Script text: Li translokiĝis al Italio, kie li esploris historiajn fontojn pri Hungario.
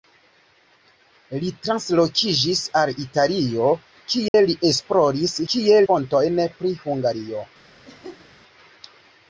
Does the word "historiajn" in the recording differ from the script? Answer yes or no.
yes